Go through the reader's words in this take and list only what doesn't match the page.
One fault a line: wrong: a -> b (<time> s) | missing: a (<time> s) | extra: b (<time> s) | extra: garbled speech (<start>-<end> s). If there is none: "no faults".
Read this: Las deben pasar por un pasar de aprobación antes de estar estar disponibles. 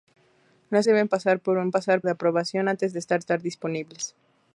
no faults